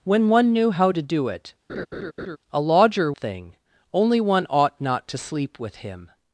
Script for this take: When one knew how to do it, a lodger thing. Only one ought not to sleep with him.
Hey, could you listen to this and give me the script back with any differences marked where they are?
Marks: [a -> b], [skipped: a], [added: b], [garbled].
When one knew how to do it, a lodger thing. Only one ought not to sleep with him.